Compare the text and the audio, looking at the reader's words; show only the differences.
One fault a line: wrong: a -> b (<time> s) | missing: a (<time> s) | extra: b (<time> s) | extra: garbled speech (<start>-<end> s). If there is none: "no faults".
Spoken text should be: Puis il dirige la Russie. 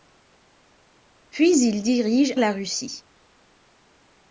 no faults